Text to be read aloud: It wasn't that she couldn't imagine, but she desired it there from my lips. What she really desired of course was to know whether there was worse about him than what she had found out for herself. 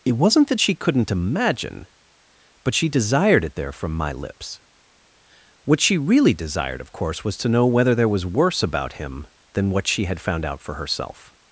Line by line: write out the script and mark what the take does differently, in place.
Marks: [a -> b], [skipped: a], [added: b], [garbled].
It wasn't that she couldn't imagine, but she desired it there from my lips. What she really desired of course was to know whether there was worse about him than what she had found out for herself.